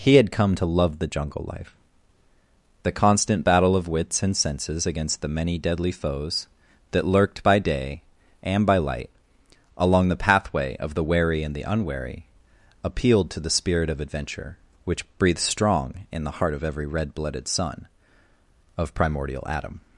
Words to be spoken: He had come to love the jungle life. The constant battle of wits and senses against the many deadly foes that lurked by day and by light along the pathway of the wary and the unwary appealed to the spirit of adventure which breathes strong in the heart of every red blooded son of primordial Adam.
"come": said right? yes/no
yes